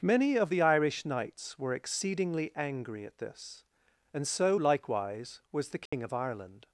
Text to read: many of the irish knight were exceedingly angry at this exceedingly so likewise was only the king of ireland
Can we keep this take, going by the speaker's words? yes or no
no